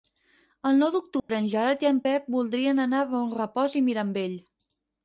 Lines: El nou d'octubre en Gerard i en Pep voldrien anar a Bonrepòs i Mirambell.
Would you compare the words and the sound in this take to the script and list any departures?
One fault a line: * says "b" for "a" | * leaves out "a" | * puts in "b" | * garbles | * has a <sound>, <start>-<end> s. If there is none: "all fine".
* has a dropout, 1.2-1.3 s